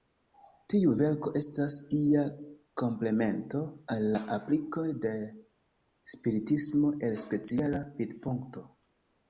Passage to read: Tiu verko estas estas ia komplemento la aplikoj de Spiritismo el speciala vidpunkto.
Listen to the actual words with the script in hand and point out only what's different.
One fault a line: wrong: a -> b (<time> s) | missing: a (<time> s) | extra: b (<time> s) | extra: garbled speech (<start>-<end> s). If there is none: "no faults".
missing: estas (1.8 s)
extra: al (4.0 s)